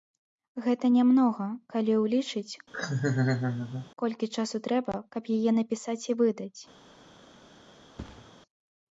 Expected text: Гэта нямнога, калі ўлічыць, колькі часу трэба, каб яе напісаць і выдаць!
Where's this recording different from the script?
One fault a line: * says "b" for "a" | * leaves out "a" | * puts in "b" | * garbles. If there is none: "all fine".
all fine